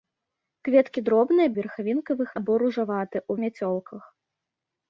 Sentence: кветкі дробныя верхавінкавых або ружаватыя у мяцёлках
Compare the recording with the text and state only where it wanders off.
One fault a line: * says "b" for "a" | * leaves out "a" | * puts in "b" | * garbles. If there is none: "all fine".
all fine